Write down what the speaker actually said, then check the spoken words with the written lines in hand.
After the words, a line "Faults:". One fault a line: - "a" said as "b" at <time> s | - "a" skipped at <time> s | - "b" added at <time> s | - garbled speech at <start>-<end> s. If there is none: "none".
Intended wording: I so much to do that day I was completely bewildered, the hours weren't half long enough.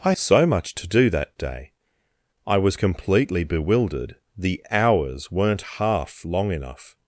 I so much to do that day I was completely bewildered, the hours weren't half long enough.
Faults:
none